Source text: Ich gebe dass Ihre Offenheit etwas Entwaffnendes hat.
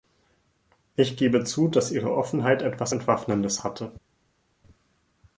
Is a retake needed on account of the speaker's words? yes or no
yes